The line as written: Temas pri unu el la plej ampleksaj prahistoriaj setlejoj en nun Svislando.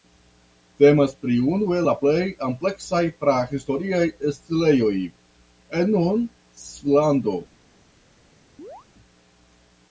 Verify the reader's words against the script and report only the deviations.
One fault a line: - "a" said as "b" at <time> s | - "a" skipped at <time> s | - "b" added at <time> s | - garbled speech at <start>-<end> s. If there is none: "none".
none